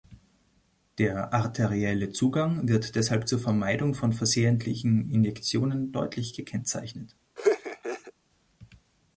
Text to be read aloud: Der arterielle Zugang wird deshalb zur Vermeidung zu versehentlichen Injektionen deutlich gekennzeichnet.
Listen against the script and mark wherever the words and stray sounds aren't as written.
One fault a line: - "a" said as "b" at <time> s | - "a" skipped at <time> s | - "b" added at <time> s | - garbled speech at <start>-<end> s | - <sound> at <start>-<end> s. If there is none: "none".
- "zu" said as "von" at 3.9 s
- laugh at 7.4-8.1 s